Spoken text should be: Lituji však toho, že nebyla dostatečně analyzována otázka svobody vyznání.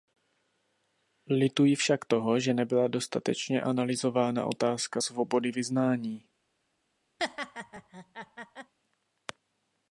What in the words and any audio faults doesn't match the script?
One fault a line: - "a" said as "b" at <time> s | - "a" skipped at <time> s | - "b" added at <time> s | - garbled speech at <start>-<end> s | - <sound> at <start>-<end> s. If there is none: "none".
- laugh at 7.2-8.7 s